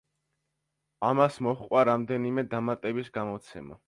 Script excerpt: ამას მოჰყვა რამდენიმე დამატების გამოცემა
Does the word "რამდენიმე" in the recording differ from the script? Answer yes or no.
no